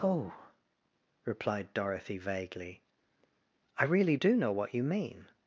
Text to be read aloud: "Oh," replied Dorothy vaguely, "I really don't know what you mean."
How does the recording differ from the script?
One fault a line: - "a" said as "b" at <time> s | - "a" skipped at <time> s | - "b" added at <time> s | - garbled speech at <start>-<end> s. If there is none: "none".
- "don't" said as "do" at 4.1 s